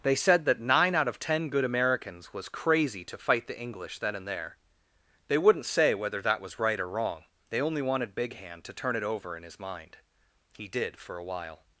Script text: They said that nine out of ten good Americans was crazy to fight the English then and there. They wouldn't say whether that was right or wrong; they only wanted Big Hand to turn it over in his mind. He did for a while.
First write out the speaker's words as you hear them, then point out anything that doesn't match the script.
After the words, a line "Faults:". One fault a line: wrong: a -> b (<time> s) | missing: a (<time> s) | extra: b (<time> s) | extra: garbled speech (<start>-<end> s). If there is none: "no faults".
They said that nine out of ten good Americans was crazy to fight the English then and there. They wouldn't say whether that was right or wrong; they only wanted Big Hand to turn it over in his mind. He did for a while.
Faults:
no faults